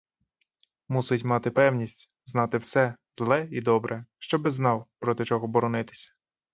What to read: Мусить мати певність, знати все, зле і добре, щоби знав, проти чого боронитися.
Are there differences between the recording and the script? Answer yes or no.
no